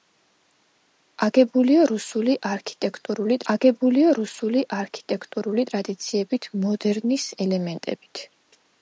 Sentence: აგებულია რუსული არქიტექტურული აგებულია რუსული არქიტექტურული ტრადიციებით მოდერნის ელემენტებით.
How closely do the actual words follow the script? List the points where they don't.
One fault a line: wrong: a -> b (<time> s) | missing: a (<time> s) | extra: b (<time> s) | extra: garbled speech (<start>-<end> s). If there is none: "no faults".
no faults